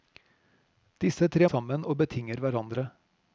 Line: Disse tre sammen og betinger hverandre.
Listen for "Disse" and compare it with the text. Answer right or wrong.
right